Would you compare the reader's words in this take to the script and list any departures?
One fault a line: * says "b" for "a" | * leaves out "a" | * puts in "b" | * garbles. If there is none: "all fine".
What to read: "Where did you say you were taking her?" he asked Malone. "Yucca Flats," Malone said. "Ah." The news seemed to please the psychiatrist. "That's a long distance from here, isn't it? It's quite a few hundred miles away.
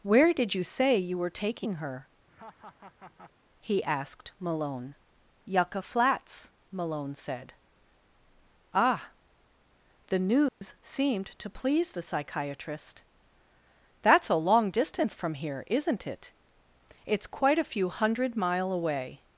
* says "mile" for "miles"